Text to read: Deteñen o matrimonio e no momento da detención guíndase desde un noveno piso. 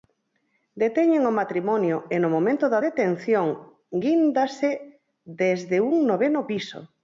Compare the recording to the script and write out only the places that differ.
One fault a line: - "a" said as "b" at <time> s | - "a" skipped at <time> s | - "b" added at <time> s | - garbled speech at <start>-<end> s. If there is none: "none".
none